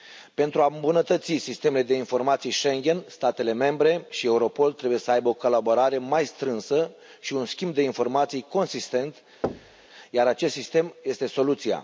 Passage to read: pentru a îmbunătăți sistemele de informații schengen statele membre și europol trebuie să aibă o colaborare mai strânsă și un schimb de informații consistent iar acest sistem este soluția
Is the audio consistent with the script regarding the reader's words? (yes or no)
yes